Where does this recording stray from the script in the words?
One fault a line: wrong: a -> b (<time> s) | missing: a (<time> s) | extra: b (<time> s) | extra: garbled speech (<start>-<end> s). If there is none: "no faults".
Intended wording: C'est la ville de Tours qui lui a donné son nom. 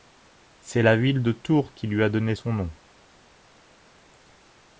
no faults